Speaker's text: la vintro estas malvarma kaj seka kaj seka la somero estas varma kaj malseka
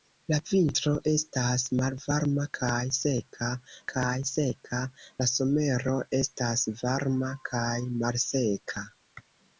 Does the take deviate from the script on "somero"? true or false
false